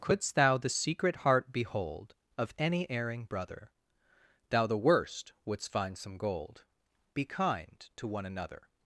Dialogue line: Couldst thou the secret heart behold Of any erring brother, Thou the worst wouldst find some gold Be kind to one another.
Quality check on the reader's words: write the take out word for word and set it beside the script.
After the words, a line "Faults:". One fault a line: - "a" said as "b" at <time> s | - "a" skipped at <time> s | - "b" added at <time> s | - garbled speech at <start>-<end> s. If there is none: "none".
Couldst thou the secret heart behold Of any erring brother, Thou the worst wouldst find some gold Be kind to one another.
Faults:
none